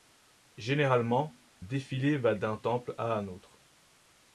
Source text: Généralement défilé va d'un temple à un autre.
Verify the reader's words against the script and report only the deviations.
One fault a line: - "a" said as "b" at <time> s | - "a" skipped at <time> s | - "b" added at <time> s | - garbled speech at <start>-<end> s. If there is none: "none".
none